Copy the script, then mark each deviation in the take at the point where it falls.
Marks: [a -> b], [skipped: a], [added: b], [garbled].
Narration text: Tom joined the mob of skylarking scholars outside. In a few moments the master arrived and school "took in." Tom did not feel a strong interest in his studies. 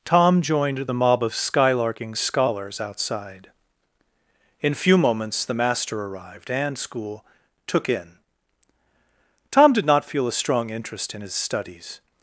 Tom joined the mob of skylarking scholars outside. In [skipped: a] few moments the master arrived and school "took in." Tom did not feel a strong interest in his studies.